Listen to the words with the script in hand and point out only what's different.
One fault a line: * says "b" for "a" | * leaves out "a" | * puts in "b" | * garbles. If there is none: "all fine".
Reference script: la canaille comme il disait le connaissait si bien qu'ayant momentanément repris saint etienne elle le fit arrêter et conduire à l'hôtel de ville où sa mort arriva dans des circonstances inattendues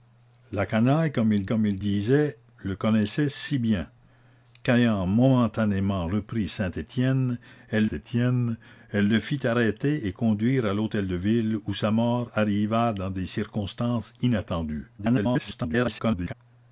* puts in "comme il"
* puts in "etienne elle"
* garbles